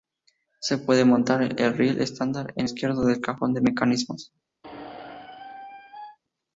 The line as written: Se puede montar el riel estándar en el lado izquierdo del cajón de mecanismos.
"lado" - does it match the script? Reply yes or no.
no